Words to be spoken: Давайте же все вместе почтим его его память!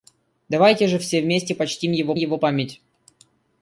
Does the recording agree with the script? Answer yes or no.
yes